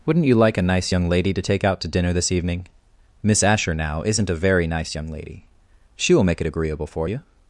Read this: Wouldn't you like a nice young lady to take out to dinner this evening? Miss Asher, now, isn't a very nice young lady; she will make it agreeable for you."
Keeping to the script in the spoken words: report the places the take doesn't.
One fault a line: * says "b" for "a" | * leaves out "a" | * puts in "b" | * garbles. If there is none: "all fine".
all fine